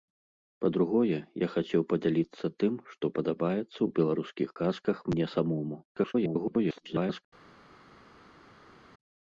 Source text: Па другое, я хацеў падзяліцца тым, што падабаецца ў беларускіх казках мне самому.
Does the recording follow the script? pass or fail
fail